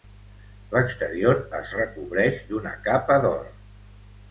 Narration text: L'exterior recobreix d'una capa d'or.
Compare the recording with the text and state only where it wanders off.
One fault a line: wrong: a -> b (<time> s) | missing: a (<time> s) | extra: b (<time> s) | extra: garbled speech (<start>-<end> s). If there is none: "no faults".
extra: es (1.6 s)